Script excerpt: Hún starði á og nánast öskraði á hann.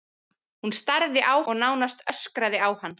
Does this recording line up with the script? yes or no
yes